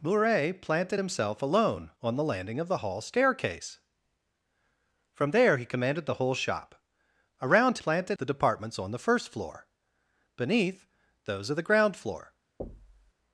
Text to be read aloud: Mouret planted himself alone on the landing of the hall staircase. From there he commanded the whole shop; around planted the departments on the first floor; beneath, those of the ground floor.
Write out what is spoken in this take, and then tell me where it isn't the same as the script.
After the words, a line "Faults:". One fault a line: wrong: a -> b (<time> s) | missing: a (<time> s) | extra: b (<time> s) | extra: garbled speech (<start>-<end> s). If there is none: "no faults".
Mouret planted himself alone on the landing of the hall staircase. From there he commanded the whole shop; around planted the departments on the first floor; beneath, those of the ground floor.
Faults:
no faults